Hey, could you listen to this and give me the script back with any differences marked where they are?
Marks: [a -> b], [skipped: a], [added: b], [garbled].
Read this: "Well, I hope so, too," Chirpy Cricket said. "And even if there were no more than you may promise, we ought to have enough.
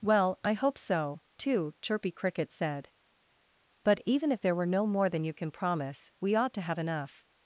"Well, I hope so, too," Chirpy Cricket said. ["And -> But] even if there were no more than you [may -> can] promise, we ought to have enough.